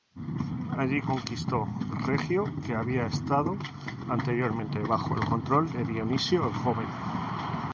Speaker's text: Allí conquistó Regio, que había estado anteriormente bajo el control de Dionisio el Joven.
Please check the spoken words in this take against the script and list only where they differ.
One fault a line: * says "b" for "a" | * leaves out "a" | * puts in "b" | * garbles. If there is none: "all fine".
all fine